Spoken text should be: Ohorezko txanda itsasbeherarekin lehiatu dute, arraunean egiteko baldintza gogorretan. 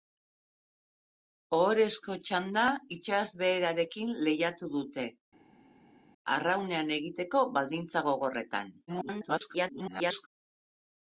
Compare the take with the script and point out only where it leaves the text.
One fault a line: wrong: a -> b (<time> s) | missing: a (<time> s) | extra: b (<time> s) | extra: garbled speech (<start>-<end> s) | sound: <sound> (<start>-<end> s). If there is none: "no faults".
extra: garbled speech (8.9-10.3 s)